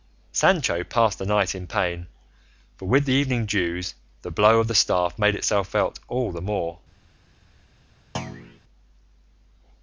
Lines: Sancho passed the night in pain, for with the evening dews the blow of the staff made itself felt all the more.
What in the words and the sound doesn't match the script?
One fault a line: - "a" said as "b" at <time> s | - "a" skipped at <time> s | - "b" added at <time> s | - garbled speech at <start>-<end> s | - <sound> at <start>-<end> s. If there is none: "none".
- thud at 8.1-8.6 s